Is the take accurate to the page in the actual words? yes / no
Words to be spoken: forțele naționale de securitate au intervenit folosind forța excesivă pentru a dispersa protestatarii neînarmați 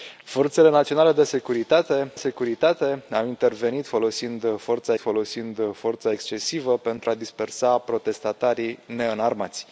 no